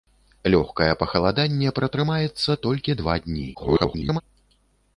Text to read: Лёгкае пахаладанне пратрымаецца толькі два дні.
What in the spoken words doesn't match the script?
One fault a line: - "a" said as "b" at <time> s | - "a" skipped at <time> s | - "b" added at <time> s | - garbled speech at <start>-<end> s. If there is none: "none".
- garbled speech at 3.5-4.2 s